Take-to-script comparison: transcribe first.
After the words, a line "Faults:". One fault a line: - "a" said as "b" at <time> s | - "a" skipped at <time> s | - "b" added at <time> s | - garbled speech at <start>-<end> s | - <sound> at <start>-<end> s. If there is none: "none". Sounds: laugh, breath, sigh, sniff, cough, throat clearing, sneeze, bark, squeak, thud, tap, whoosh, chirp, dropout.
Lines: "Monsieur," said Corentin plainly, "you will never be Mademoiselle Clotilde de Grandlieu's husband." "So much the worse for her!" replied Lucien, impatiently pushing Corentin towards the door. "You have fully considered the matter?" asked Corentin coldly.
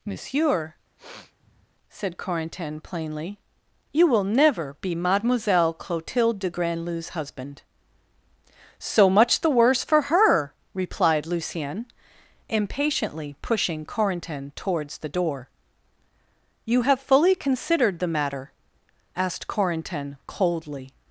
"Monsieur," said Corentin plainly, "you will never be Mademoiselle Clotilde de Grandlieu's husband." "So much the worse for her!" replied Lucien, impatiently pushing Corentin towards the door. "You have fully considered the matter?" asked Corentin coldly.
Faults:
- sniff at 1.0-1.7 s